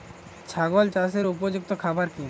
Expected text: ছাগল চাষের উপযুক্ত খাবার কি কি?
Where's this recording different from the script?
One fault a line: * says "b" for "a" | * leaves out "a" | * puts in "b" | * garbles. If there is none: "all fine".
all fine